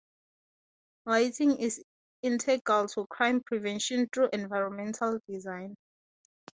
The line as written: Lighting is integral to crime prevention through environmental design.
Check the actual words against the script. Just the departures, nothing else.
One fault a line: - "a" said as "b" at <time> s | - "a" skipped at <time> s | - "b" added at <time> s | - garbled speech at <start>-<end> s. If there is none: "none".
none